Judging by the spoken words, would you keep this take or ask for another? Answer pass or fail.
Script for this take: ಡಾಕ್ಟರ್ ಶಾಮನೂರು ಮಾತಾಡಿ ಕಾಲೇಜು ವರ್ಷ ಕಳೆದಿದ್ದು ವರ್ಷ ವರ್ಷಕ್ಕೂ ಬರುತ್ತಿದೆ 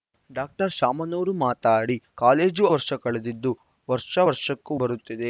pass